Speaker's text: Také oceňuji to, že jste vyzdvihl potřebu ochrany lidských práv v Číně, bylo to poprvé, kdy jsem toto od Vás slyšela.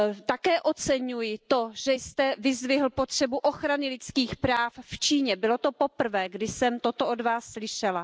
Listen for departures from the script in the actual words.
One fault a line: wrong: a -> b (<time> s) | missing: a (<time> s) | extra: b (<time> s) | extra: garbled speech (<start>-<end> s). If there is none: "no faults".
no faults